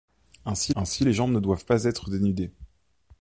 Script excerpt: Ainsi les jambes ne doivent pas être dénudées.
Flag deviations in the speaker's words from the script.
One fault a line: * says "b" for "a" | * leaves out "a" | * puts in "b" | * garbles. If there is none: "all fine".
* puts in "ainsi"